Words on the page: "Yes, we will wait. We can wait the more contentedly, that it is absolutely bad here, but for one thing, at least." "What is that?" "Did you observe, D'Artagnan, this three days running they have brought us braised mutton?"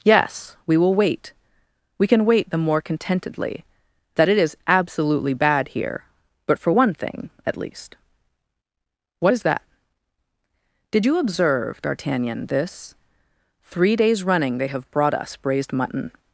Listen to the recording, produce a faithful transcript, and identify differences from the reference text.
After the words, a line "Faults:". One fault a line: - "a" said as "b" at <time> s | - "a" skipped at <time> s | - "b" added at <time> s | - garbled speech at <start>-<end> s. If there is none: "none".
"Yes, we will wait. We can wait the more contentedly, that it is absolutely bad here, but for one thing, at least." "What is that?" "Did you observe, D'Artagnan, this three days running they have brought us braised mutton?"
Faults:
none